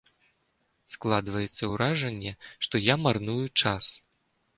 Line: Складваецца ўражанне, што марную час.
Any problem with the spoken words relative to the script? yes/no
yes